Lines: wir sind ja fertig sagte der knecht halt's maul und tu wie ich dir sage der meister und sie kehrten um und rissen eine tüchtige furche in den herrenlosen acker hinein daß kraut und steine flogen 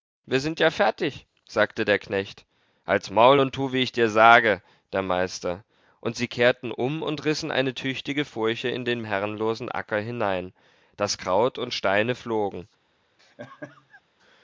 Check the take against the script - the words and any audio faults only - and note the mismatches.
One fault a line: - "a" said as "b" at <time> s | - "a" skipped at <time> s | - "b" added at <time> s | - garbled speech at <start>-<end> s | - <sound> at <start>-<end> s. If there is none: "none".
- laugh at 13.2-14.0 s